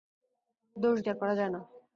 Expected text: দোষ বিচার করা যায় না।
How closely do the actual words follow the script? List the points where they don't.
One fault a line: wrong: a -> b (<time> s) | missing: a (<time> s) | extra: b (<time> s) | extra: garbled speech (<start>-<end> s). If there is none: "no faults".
no faults